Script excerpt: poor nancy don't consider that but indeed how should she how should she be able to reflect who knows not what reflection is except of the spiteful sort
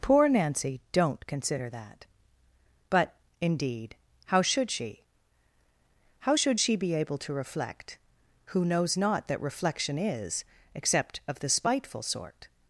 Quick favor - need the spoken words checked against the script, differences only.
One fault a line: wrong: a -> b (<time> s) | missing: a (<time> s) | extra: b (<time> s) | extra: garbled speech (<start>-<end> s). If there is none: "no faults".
wrong: what -> that (9.3 s)